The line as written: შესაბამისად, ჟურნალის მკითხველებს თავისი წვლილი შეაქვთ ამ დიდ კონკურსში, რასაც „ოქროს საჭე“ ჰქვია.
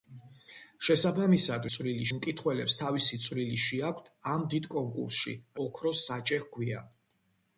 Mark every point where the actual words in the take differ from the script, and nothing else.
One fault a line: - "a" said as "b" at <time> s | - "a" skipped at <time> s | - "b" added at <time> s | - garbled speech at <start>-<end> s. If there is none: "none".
- "ჟურნალის" said as "წვლილი" at 1.7 s
- "რასაც" skipped at 5.4 s